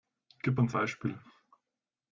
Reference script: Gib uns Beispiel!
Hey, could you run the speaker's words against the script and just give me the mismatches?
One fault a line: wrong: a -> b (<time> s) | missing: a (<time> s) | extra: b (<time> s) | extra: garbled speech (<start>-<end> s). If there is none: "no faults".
no faults